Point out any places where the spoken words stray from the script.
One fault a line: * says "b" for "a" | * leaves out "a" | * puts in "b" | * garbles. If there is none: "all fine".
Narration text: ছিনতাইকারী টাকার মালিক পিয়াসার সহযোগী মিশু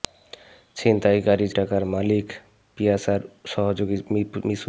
all fine